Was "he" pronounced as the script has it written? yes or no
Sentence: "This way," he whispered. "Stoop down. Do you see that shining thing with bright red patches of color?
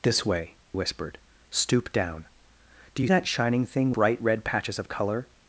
no